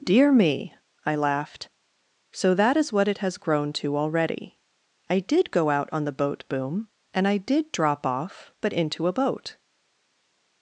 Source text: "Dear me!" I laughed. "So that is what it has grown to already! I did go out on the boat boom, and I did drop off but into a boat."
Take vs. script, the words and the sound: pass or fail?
pass